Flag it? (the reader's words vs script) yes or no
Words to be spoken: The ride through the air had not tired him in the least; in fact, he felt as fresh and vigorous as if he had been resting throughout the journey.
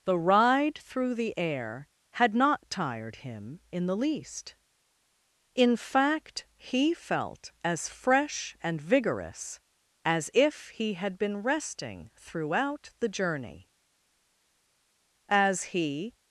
yes